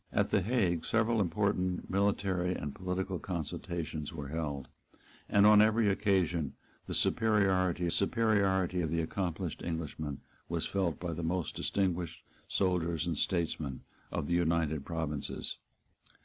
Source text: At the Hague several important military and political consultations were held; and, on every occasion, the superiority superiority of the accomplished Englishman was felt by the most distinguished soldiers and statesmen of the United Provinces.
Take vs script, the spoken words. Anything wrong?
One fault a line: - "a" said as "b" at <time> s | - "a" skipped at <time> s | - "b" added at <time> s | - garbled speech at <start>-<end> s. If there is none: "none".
none